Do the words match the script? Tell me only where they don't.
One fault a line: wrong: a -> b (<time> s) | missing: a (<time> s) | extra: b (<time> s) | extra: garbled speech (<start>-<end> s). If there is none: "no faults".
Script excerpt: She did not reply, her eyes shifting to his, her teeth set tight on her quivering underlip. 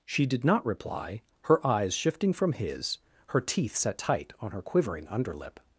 wrong: to -> from (2.3 s)